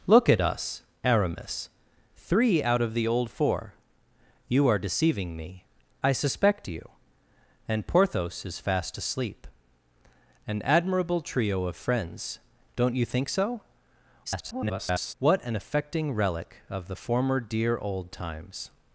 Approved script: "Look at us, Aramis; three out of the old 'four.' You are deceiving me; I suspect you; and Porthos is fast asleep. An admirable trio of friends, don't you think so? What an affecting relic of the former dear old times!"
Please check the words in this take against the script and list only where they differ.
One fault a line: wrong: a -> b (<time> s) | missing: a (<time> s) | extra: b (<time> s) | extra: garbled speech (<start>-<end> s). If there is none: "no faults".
extra: garbled speech (14.2-15.1 s)